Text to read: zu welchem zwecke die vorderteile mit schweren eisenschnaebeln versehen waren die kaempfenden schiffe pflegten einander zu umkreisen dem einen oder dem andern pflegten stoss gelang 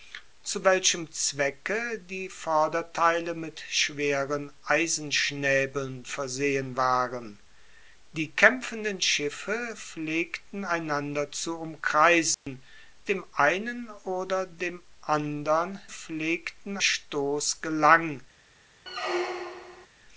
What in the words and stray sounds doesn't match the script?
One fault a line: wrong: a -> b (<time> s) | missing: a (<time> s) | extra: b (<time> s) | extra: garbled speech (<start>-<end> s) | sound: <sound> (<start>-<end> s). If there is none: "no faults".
sound: dropout (12.3-12.5 s)
sound: squeak (18.9-19.9 s)